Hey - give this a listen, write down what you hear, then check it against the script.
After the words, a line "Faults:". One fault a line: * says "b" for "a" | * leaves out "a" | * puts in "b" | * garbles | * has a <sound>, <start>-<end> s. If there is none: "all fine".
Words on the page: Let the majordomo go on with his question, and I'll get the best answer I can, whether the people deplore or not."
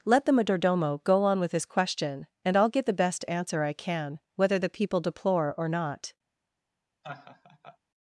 Let the majordomo go on with his question, and I'll get the best answer I can, whether the people deplore or not."
Faults:
* has a laugh, 7.0-7.8 s